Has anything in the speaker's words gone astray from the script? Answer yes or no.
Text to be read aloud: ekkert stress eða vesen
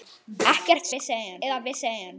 yes